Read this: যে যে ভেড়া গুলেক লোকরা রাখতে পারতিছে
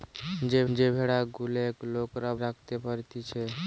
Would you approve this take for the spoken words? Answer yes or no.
yes